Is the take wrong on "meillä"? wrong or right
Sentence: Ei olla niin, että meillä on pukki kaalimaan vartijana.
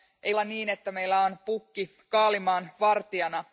right